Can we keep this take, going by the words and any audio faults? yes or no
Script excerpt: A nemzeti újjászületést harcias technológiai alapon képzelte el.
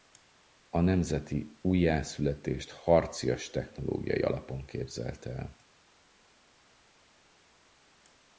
yes